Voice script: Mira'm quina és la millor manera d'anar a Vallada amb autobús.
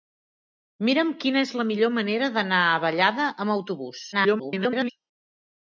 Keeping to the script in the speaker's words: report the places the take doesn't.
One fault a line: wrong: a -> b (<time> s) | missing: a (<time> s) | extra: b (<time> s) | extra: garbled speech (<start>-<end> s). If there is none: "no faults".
extra: garbled speech (4.1-4.9 s)